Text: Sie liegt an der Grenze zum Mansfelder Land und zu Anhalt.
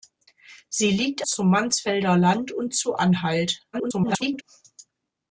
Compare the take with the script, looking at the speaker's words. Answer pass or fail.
fail